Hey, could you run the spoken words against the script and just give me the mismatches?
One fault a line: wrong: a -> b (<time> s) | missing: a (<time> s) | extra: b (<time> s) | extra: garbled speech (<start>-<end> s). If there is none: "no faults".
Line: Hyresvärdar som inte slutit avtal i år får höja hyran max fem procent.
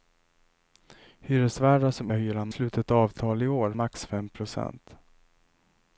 wrong: inte -> hyran (2.1 s)
missing: får höja hyran (3.7 s)